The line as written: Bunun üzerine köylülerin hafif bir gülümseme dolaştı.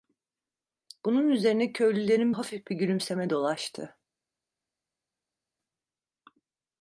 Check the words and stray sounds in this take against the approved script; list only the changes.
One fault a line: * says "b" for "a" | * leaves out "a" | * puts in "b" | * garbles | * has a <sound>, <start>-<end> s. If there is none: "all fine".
all fine